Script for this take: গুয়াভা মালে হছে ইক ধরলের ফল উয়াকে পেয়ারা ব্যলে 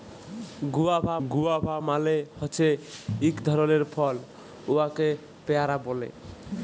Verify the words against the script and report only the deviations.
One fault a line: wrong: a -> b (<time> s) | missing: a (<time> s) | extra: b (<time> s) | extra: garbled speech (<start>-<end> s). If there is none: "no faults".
extra: গুয়াভা (1.3 s)